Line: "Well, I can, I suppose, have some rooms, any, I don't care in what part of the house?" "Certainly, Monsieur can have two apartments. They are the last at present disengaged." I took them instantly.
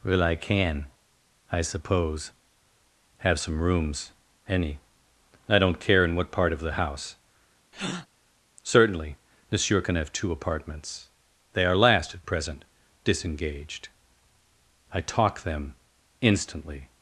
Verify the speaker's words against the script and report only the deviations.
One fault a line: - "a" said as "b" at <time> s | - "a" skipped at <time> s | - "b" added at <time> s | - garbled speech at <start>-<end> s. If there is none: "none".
- "the" skipped at 11.8 s
- "took" said as "talk" at 15.0 s